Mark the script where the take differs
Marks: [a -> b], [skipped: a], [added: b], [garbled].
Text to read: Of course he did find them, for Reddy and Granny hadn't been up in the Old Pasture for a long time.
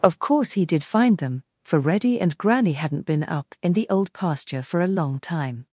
Of course he did find them, for Reddy and Granny hadn't been up in the Old Pasture for a long time.